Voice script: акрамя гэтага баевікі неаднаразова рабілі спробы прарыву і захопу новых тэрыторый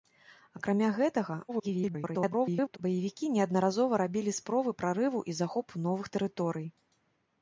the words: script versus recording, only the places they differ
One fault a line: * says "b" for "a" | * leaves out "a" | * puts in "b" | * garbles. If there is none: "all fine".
* garbles